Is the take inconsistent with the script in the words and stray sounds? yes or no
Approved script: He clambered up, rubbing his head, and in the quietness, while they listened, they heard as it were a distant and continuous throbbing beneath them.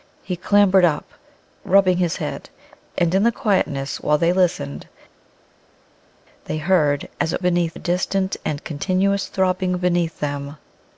yes